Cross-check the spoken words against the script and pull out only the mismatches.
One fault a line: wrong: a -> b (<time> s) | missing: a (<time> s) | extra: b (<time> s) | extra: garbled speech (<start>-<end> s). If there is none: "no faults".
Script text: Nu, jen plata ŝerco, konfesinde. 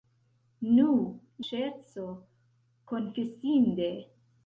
missing: jen plata (0.8 s)